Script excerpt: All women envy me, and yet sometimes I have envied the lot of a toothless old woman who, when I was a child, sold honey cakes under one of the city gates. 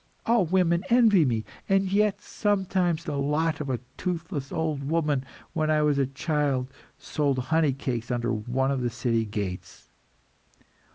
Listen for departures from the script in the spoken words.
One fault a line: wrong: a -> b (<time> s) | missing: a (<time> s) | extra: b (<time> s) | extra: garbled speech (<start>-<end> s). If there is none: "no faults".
missing: I have envied (3.0 s)